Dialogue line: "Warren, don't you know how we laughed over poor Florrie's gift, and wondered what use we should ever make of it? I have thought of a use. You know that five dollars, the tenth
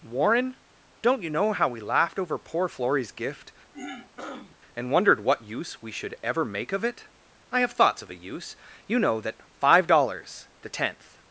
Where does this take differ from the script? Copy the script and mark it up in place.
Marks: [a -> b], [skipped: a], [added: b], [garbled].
"Warren, don't you know how we laughed over poor Florrie's gift, and wondered what use we should ever make of it? I have [thought -> thoughts] of a use. You know that five dollars, the tenth